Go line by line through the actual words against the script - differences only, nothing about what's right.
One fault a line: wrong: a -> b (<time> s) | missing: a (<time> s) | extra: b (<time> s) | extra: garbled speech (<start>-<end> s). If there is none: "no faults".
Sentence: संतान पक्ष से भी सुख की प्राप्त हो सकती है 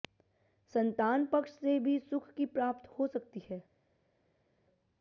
no faults